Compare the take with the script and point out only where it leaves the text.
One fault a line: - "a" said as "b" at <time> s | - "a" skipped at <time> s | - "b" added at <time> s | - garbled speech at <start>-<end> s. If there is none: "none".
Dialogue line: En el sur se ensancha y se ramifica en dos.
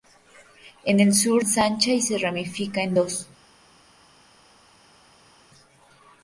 - "se" skipped at 1.4 s